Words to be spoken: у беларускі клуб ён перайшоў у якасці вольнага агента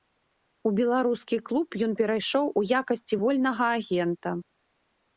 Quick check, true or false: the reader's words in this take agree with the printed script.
true